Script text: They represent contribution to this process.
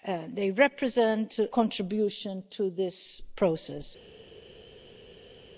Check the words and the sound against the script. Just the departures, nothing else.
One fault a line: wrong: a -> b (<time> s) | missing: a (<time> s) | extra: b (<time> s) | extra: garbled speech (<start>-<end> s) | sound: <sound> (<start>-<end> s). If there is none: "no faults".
no faults